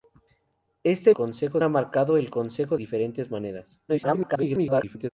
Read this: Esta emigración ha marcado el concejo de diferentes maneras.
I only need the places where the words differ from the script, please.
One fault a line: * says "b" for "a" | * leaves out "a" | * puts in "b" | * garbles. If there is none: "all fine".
* says "concejo" for "emigración"
* leaves out "de"
* garbles